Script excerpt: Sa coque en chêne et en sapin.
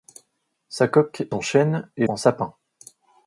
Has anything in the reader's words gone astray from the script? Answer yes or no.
no